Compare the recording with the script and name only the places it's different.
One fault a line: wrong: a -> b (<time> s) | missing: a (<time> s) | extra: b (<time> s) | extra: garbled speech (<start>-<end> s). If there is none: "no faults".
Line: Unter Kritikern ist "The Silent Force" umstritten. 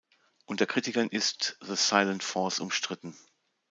no faults